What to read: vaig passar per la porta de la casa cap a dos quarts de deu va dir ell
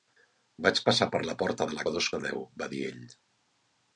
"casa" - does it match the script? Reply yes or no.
no